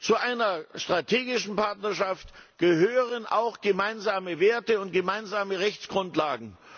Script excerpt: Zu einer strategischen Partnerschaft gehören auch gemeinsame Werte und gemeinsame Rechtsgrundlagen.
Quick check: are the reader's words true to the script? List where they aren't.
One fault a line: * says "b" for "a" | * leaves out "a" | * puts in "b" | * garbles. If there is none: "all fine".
all fine